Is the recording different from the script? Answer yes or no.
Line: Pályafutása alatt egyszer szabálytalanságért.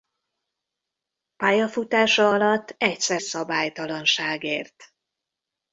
no